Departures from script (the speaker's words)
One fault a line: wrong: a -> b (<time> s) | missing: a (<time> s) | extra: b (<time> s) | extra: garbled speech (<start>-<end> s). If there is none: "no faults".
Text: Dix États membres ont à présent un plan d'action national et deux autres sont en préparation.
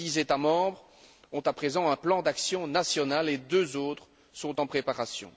no faults